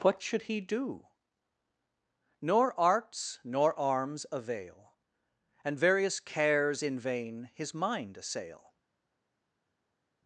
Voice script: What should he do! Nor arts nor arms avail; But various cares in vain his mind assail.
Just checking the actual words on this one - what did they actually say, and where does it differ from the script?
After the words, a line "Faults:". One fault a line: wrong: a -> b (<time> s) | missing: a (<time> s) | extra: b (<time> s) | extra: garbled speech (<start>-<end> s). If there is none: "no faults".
What should he do! Nor arts nor arms avail; And various cares in vain his mind assail.
Faults:
wrong: But -> And (5.6 s)